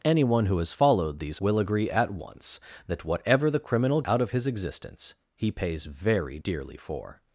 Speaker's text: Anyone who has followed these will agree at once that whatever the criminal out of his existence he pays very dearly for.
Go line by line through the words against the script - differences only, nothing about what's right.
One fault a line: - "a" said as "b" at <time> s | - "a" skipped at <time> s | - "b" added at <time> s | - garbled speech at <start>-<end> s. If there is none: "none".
none